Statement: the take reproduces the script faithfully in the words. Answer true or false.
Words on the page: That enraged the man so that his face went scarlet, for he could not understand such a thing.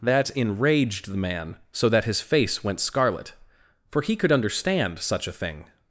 false